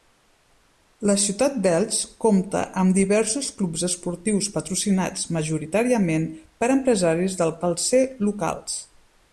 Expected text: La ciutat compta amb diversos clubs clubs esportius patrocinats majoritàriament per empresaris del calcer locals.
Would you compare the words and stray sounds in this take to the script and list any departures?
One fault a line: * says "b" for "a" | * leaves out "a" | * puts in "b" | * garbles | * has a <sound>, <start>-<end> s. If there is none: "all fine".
* puts in "d'Elx"
* leaves out "clubs"